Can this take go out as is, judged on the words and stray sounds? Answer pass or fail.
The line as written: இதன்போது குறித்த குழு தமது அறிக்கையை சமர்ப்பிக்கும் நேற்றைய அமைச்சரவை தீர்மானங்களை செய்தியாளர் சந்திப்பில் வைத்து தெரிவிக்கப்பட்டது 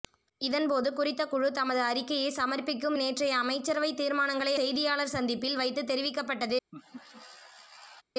fail